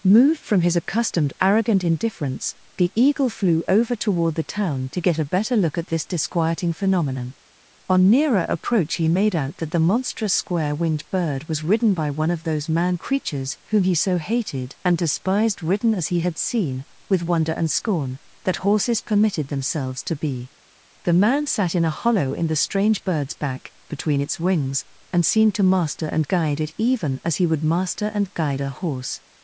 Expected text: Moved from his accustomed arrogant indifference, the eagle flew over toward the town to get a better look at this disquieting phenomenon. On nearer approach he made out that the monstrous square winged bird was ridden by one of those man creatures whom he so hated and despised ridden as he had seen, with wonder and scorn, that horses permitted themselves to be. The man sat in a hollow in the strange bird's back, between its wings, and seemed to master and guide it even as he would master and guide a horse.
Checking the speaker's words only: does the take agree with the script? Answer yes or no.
yes